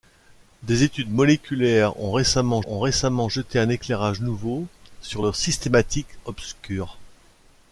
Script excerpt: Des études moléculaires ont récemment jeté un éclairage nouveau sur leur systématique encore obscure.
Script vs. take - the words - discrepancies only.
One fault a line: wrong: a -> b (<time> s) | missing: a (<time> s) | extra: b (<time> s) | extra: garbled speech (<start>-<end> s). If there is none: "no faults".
extra: ont récemment (2.7 s)
missing: encore (6.1 s)